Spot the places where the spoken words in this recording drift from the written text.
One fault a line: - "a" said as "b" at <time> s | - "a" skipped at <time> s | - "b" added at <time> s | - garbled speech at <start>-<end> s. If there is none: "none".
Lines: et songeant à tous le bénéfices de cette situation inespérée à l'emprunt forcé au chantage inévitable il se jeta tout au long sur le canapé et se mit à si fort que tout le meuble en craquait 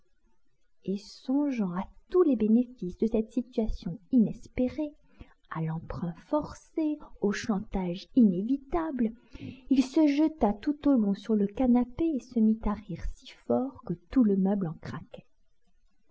- "le" said as "les" at 2.2 s
- "rire" added at 12.7 s